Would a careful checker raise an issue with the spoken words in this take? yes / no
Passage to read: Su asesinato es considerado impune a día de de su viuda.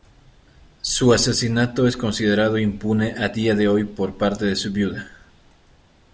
yes